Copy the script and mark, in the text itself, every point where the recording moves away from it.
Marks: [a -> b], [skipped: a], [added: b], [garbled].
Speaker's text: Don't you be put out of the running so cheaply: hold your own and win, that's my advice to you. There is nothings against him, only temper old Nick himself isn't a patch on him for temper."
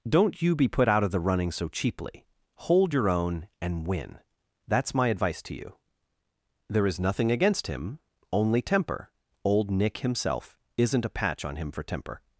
Don't you be put out of the running so cheaply: hold your own and win, that's my advice to you. There is [nothings -> nothing] against him, only temper old Nick himself isn't a patch on him for temper."